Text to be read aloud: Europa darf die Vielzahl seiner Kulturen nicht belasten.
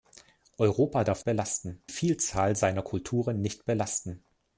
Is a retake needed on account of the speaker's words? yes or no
yes